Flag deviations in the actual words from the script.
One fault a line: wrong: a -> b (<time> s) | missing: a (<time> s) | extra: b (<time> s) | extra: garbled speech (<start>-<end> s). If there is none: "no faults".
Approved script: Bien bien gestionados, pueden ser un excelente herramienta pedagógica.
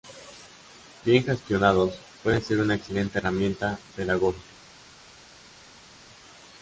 missing: bien (1.2 s)
wrong: un -> una (2.6 s)